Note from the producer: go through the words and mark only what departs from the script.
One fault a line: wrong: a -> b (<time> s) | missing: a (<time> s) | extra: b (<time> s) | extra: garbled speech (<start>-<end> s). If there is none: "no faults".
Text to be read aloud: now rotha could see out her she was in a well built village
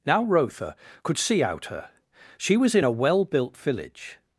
no faults